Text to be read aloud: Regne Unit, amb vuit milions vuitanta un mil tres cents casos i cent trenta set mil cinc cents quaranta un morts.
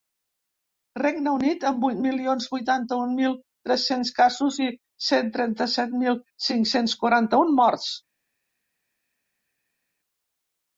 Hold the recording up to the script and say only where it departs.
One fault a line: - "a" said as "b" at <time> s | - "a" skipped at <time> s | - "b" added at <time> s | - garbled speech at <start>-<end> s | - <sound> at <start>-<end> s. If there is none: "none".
none